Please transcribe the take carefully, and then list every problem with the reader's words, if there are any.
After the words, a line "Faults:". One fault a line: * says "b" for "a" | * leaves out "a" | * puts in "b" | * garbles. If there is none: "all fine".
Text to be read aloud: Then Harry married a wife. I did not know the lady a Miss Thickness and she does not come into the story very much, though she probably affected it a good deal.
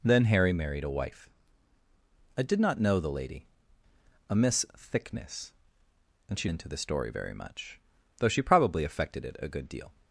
Then Harry married a wife. I did not know the lady a Miss Thickness and she into the story very much, though she probably affected it a good deal.
Faults:
* leaves out "does not come"